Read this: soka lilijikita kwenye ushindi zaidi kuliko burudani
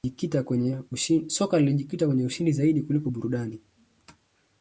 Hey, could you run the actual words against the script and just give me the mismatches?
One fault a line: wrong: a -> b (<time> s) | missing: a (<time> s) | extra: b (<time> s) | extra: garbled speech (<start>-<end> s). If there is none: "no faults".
no faults